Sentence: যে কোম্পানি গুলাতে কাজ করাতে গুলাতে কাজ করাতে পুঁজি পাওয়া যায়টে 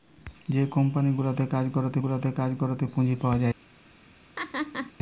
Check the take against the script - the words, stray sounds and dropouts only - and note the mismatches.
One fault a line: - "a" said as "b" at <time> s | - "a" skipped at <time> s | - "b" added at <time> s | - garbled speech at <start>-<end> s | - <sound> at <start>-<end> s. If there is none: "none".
- laugh at 4.4-4.9 s